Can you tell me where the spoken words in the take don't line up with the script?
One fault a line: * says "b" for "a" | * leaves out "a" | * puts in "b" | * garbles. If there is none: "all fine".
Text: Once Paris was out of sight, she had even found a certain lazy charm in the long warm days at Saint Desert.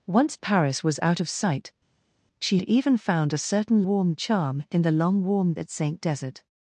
* leaves out "had"
* says "warm" for "lazy"
* leaves out "days"